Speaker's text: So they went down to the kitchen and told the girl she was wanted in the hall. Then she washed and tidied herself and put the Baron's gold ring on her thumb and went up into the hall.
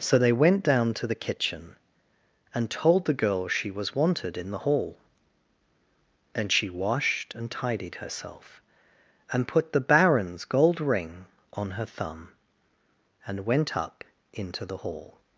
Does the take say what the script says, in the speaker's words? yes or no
no